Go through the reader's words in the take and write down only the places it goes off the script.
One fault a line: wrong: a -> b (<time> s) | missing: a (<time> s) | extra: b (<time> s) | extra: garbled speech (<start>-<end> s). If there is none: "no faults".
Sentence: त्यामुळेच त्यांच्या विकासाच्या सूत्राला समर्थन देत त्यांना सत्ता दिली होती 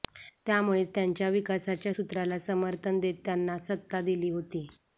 no faults